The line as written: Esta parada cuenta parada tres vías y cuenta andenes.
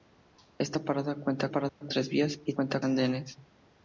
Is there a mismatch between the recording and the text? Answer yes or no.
no